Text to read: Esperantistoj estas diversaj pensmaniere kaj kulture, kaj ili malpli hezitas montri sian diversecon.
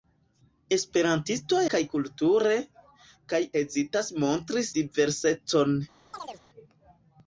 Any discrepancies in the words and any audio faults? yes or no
yes